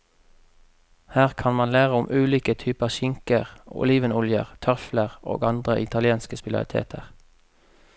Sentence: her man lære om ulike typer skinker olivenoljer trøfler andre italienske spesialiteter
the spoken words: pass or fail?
fail